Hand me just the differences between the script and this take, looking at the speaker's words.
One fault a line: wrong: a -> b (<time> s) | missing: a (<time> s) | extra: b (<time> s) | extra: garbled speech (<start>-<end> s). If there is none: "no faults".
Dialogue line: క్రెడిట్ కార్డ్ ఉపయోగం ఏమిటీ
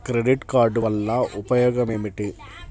extra: వల్ల (0.8 s)